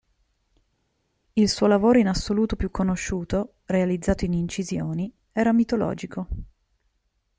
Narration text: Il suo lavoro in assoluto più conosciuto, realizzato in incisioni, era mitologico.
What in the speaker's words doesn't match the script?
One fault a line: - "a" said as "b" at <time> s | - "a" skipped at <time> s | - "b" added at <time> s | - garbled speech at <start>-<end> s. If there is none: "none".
none